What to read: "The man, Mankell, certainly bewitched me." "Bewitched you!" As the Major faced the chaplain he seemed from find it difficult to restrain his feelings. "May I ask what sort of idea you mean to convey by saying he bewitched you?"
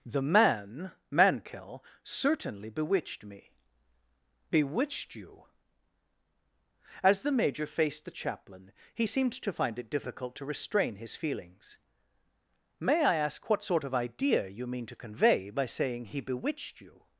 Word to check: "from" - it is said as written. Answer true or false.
false